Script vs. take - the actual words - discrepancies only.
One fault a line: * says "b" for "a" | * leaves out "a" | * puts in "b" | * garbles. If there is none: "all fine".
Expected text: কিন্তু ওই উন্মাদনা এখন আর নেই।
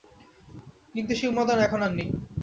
* says "সেই" for "ওই"